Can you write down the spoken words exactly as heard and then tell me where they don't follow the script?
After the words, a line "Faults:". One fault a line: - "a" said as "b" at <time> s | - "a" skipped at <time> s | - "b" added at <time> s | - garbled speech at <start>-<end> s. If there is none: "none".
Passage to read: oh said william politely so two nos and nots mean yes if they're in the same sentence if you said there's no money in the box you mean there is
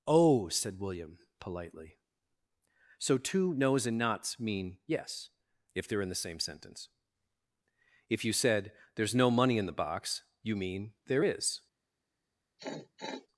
oh said william politely so two nos and nots mean yes if they're in the same sentence if you said there's no money in the box you mean there is
Faults:
none